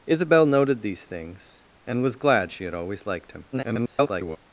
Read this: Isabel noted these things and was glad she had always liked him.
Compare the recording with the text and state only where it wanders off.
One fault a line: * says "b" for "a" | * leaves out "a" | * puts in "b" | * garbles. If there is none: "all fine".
* garbles